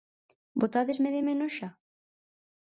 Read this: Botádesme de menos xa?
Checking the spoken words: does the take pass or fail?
pass